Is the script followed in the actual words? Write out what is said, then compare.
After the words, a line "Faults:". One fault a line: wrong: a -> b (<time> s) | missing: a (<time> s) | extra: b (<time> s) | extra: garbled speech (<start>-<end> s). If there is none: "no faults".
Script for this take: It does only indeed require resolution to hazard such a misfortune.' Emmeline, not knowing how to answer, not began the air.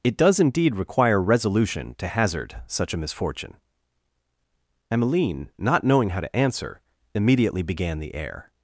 It does indeed require resolution to hazard such a misfortune.' Emmeline, not knowing how to answer, immediately began the air.
Faults:
missing: only (0.4 s)
wrong: not -> immediately (7.1 s)